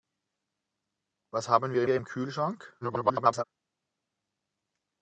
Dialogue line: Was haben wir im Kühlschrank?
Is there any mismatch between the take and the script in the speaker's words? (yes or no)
yes